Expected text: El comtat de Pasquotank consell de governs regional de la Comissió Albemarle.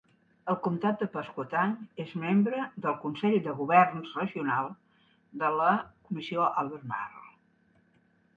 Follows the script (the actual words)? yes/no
no